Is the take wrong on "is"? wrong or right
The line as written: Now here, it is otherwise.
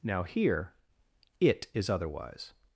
right